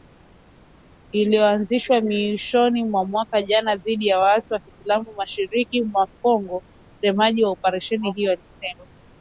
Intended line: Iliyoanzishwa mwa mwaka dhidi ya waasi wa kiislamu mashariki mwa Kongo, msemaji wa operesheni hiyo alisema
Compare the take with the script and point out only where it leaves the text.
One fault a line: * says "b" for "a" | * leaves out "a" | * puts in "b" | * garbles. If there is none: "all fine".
* puts in "mwishoni"
* puts in "jana"